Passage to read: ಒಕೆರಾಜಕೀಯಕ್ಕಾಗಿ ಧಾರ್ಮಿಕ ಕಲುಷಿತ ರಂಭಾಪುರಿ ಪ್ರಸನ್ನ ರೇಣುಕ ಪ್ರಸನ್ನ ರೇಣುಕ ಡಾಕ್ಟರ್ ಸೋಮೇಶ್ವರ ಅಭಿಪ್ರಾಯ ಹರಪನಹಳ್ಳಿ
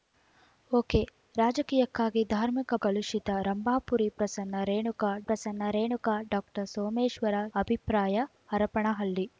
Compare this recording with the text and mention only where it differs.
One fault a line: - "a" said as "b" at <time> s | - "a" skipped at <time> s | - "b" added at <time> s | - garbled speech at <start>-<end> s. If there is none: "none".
none